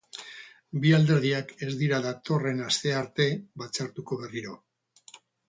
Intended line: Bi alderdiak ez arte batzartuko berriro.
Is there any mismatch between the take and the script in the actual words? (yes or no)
yes